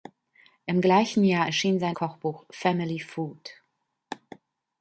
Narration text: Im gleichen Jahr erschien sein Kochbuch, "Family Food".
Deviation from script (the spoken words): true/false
false